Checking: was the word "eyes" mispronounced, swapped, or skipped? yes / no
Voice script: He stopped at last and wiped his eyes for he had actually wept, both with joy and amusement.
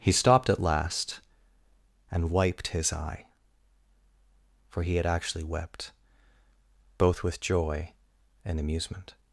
yes